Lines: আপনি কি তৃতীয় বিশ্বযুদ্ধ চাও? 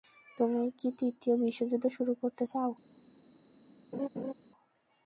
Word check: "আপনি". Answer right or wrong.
wrong